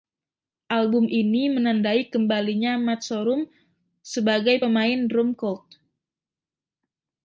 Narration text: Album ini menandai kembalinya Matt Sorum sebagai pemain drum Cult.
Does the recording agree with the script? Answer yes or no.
yes